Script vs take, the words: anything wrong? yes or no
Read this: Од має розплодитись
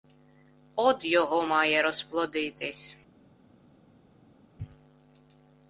yes